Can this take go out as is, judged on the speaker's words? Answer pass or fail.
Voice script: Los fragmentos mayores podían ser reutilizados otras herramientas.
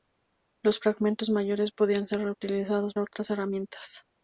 pass